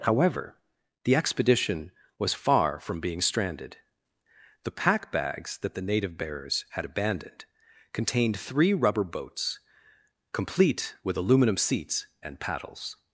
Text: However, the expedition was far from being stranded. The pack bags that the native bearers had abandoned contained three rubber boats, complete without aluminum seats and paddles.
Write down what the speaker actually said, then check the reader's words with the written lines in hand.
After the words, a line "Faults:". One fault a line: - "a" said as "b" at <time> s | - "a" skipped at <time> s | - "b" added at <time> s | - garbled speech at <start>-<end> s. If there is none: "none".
However, the expedition was far from being stranded. The pack bags that the native bearers had abandoned contained three rubber boats, complete with aluminum seats and paddles.
Faults:
- "without" said as "with" at 11.0 s